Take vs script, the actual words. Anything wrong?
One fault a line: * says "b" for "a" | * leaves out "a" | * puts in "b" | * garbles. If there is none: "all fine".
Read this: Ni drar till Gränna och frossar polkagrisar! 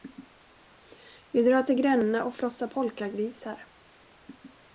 * says "Vi" for "Ni"